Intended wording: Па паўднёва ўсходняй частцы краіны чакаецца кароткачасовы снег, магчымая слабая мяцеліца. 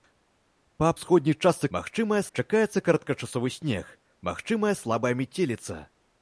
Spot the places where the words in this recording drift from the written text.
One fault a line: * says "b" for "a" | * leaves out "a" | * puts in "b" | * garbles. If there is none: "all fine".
* leaves out "паўднёва"
* says "магчымая" for "краіны"